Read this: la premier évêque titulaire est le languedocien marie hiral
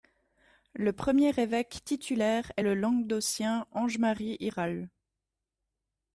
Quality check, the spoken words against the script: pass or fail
fail